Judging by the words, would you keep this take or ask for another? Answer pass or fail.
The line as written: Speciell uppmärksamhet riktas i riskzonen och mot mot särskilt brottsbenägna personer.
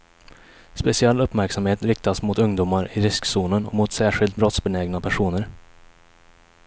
fail